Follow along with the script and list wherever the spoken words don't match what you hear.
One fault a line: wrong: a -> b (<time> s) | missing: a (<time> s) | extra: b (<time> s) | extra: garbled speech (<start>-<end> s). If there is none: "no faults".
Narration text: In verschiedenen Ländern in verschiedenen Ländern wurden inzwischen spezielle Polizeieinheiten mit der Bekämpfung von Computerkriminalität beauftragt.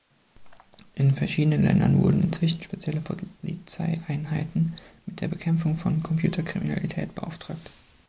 missing: in verschiedenen Ländern (2.0 s)